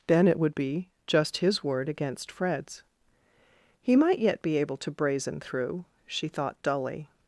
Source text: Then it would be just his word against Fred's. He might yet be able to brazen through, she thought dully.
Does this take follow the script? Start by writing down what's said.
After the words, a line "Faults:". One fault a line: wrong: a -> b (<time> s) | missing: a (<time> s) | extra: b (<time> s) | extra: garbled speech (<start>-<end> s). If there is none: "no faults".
Then it would be just his word against Fred's. He might yet be able to brazen through, she thought dully.
Faults:
no faults